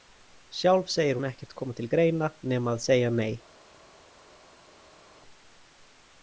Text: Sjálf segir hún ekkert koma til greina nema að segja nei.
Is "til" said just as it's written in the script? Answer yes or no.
yes